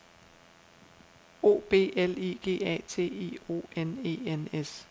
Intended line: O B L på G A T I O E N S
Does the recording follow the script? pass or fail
fail